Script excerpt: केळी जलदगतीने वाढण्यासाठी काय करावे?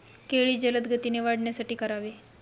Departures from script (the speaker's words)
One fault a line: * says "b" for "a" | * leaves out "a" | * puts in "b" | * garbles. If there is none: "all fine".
* leaves out "काय"